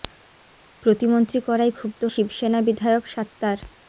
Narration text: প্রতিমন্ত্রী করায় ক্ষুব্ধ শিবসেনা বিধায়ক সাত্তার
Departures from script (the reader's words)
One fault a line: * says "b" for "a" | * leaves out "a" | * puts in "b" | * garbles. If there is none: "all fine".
all fine